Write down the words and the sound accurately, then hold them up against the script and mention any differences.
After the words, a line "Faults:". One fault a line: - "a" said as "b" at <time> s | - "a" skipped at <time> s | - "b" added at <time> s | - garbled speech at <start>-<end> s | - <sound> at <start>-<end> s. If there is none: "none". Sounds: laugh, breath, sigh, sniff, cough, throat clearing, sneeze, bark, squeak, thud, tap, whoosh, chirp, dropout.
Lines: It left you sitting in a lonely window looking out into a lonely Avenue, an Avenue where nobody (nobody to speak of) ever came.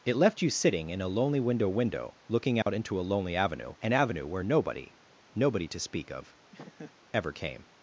It left you sitting in a lonely window window looking out into a lonely Avenue, an Avenue where nobody (nobody to speak of) ever came.
Faults:
- "window" added at 1.7 s
- dropout at 2.6-2.7 s
- laugh at 6.5-7.0 s